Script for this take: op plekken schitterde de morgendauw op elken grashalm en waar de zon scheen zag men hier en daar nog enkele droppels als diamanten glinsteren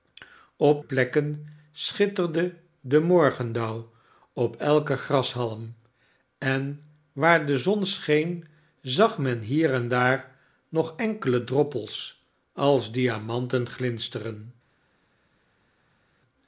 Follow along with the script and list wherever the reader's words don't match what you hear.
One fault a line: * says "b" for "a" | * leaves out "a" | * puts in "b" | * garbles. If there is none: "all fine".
all fine